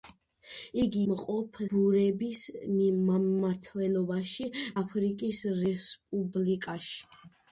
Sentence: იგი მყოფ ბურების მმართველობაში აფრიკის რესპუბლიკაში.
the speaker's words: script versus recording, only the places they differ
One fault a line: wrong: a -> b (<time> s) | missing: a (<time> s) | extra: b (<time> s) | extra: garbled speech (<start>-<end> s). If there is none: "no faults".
no faults